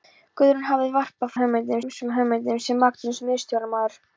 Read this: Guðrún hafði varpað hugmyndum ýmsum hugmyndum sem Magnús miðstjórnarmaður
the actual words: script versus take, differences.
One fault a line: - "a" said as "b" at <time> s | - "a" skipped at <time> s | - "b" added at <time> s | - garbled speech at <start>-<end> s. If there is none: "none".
none